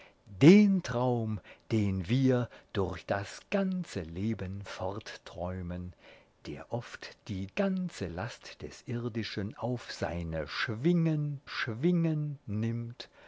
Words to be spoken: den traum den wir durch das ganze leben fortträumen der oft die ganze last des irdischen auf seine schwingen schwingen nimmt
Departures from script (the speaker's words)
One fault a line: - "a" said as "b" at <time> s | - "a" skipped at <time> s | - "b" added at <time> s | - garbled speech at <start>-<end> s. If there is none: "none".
none